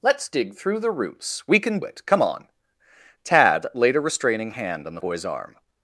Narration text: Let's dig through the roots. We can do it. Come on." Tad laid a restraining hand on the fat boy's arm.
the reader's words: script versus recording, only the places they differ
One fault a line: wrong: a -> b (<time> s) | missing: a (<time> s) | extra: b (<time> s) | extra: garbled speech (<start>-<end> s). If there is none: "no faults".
missing: do (1.8 s)
missing: fat (5.0 s)